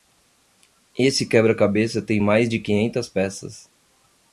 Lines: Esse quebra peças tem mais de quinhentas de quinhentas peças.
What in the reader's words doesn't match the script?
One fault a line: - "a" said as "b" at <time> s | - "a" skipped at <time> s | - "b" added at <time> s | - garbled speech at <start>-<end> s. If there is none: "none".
- "peças" said as "cabeça" at 1.5 s
- "de quinhentas" skipped at 3.1 s